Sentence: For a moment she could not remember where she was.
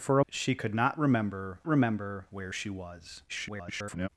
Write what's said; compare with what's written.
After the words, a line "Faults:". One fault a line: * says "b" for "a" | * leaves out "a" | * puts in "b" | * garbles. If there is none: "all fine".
For a she could not remember remember where she was. [garbled]
Faults:
* leaves out "moment"
* puts in "remember"
* garbles